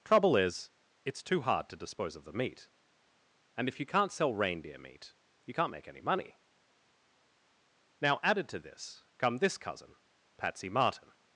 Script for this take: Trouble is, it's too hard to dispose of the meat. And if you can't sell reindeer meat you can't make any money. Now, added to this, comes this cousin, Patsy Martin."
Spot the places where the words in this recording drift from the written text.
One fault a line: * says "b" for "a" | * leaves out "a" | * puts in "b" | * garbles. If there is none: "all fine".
* says "come" for "comes"